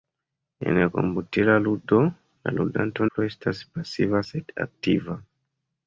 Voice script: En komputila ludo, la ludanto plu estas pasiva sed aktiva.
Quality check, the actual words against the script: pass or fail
pass